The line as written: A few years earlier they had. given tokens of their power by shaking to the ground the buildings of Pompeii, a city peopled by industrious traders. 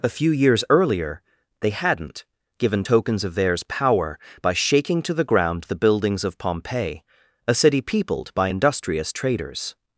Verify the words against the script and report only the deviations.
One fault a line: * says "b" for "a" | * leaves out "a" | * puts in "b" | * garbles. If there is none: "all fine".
* says "hadn't" for "had"
* says "theirs" for "their"